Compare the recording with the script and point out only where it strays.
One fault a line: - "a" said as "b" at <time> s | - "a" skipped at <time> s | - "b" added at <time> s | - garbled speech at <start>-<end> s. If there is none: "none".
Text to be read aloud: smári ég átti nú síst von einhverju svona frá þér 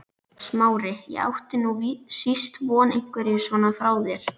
none